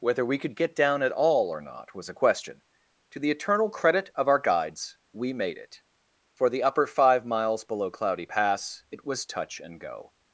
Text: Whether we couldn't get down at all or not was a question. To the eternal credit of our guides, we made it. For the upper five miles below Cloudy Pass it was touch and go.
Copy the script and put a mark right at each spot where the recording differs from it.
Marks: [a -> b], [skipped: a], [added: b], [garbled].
Whether we [couldn't -> could] get down at all or not was a question. To the eternal credit of our guides, we made it. For the upper five miles below Cloudy Pass it was touch and go.